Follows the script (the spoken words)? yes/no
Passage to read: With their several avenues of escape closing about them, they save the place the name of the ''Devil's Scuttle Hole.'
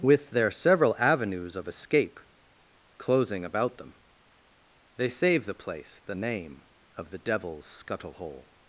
yes